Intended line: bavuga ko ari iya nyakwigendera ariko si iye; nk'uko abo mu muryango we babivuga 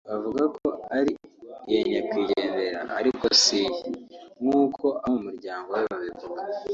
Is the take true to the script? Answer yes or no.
yes